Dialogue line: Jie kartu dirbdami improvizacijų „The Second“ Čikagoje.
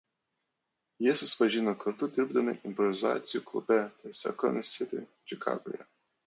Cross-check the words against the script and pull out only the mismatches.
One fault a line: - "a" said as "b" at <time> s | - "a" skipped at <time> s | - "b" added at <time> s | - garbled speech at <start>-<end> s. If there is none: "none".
- "susipažino" added at 1.2 s
- "klube" added at 3.5 s
- "City" added at 4.7 s